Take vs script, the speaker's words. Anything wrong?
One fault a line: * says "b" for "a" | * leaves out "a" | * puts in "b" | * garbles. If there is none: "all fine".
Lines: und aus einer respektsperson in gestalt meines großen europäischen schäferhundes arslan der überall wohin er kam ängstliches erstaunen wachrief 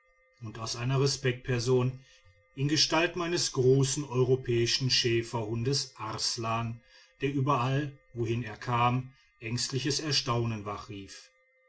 all fine